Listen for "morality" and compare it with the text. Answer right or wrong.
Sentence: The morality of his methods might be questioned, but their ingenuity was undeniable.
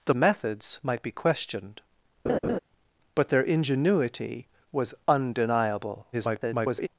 wrong